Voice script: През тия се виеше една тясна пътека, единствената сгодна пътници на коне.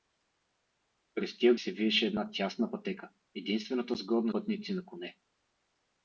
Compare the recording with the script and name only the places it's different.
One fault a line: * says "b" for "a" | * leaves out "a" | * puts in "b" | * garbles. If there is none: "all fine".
all fine